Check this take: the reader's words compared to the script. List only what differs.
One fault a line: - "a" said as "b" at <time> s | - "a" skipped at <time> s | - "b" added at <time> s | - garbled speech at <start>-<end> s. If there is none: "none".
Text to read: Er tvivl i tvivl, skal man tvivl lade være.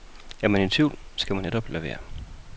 - "tvivl" said as "man" at 0.5 s
- "tvivl" said as "netop" at 1.4 s